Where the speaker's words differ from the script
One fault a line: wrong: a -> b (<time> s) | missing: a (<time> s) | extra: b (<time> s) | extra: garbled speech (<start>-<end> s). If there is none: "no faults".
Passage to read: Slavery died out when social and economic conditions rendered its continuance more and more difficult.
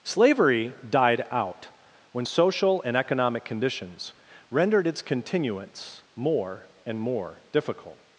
no faults